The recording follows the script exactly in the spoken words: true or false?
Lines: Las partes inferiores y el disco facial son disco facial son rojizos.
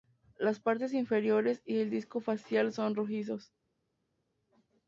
false